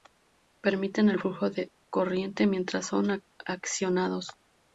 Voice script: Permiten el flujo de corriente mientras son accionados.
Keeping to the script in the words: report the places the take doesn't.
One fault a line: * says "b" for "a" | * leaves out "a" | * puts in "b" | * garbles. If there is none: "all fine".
all fine